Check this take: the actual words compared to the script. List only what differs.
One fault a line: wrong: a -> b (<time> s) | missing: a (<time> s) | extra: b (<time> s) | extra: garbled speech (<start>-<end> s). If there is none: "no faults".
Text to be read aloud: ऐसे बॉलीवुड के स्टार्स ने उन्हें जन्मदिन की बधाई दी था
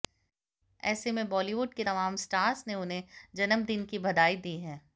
extra: में (1.1 s)
extra: तमाम (1.8 s)
wrong: था -> है (4.6 s)